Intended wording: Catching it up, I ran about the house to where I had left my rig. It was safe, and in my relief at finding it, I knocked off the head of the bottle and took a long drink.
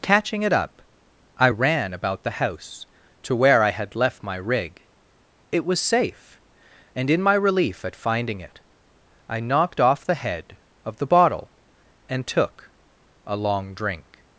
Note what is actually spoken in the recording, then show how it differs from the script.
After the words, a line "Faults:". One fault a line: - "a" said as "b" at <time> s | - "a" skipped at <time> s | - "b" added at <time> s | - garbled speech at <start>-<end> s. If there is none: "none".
Catching it up, I ran about the house to where I had left my rig. It was safe, and in my relief at finding it, I knocked off the head of the bottle and took a long drink.
Faults:
none